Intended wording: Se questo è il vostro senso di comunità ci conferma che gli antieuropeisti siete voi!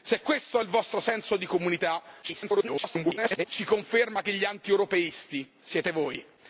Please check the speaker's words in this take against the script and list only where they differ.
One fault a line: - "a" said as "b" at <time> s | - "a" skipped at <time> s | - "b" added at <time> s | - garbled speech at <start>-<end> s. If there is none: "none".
- garbled speech at 2.2-3.5 s